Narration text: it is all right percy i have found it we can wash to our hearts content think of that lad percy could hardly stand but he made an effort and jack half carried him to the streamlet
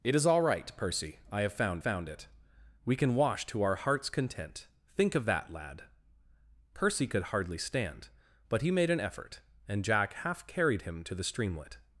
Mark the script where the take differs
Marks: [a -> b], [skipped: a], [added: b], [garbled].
it is all right percy i have found [added: found] it we can wash to our hearts content think of that lad percy could hardly stand but he made an effort and jack half carried him to the streamlet